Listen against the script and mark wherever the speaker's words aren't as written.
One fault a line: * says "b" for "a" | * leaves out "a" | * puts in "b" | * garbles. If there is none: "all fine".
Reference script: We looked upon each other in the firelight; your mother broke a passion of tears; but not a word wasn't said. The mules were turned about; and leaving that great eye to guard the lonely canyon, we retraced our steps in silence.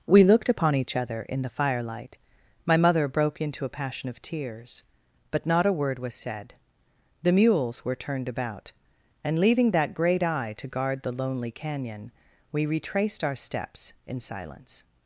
* says "my" for "your"
* puts in "into"
* says "was" for "wasn't"